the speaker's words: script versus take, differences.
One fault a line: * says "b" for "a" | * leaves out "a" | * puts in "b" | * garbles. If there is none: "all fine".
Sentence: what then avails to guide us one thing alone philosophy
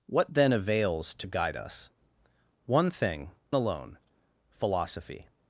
all fine